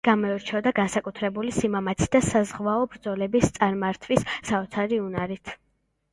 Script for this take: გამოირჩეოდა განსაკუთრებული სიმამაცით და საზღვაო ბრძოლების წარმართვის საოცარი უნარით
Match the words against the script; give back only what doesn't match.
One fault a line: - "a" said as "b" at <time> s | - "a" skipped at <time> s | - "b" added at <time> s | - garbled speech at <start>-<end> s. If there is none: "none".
none